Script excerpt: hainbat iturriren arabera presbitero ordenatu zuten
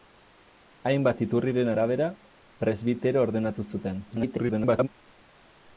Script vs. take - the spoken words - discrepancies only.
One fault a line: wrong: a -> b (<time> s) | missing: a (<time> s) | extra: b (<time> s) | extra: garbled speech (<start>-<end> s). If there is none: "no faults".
extra: garbled speech (4.1-4.9 s)